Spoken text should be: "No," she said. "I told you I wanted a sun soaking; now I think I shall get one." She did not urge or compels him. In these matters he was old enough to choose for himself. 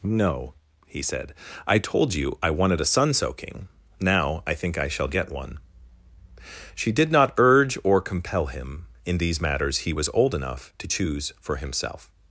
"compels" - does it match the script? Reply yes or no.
no